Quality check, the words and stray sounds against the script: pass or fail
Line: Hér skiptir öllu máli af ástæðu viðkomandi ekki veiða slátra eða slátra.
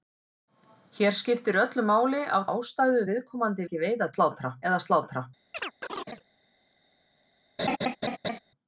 fail